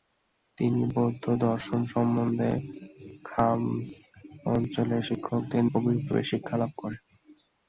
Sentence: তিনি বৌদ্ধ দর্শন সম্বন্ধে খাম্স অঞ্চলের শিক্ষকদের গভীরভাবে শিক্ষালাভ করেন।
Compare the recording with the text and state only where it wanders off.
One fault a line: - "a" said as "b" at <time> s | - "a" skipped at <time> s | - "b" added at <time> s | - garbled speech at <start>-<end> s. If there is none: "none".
none